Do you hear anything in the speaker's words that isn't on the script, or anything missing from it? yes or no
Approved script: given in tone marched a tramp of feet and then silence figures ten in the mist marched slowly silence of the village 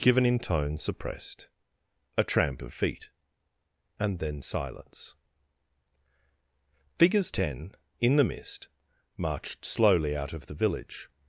yes